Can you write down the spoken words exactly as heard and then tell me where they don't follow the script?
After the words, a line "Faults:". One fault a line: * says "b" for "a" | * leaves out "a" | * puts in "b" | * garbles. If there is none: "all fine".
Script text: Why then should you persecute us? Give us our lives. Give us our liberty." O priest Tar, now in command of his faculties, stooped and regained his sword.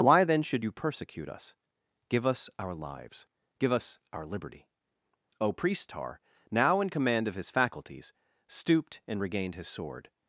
Why then should you persecute us? Give us our lives. Give us our liberty." O priest Tar, now in command of his faculties, stooped and regained his sword.
Faults:
all fine